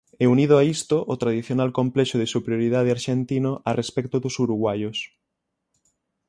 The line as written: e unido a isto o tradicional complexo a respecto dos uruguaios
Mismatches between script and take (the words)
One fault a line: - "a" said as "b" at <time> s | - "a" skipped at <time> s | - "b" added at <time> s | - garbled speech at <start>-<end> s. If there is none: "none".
- "de superioridade arxentino" added at 2.2 s